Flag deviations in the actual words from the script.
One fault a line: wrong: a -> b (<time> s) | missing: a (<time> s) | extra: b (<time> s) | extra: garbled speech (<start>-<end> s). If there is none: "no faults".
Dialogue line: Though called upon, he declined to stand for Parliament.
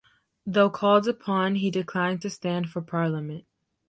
no faults